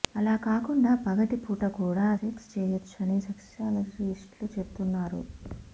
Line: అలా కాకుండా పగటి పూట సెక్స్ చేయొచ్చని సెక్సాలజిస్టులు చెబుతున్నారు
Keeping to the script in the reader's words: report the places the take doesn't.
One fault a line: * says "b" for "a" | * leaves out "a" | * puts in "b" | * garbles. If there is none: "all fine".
* puts in "కూడా"